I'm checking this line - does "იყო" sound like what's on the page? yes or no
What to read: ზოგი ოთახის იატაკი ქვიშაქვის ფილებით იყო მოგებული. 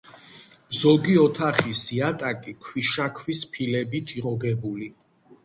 no